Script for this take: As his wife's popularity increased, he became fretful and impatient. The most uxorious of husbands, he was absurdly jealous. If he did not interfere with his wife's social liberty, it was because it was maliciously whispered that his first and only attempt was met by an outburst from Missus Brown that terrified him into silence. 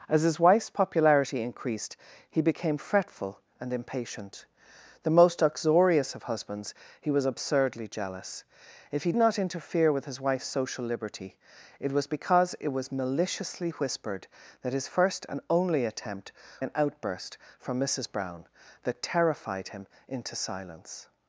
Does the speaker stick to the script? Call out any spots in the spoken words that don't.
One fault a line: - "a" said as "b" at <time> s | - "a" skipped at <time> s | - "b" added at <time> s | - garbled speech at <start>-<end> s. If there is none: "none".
- "did" skipped at 9.1 s
- "was met by" skipped at 16.3 s